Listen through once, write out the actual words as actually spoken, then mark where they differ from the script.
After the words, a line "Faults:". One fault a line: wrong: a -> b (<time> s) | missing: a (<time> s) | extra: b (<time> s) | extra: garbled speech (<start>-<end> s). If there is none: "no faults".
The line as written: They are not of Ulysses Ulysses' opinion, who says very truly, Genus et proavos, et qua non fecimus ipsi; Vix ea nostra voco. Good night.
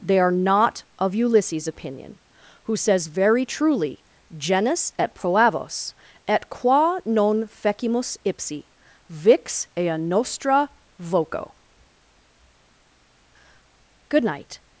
They are not of Ulysses' opinion, who says very truly, Genus et proavos, et qua non fecimus ipsi; Vix ea nostra voco. Good night.
Faults:
missing: Ulysses (1.7 s)